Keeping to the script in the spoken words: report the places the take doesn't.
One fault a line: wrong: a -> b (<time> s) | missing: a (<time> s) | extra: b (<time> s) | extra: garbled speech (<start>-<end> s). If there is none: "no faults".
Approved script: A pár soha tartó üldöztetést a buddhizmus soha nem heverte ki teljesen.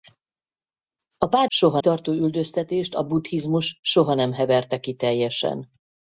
no faults